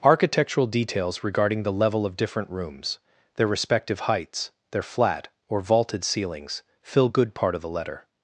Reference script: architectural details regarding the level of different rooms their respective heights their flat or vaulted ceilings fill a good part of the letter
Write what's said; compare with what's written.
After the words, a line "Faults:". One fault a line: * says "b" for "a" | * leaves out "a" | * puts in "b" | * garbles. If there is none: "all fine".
architectural details regarding the level of different rooms their respective heights their flat or vaulted ceilings fill good part of the letter
Faults:
* leaves out "a"